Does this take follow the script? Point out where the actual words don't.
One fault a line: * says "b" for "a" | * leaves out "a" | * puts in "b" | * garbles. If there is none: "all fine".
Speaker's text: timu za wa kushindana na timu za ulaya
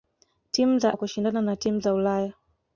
all fine